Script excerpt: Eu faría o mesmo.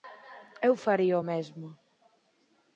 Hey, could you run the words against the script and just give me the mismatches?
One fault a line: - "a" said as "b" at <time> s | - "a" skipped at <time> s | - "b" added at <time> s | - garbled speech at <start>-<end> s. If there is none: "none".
none